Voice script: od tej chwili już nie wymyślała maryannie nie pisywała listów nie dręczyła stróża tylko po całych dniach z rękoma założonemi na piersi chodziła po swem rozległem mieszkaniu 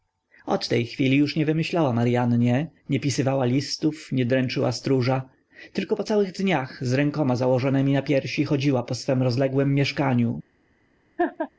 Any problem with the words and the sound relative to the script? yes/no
yes